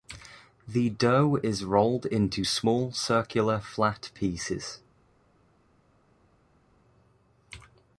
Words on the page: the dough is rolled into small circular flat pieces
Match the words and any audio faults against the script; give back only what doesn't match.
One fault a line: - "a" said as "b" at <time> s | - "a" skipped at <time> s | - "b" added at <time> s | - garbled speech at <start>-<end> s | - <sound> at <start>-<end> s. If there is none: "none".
none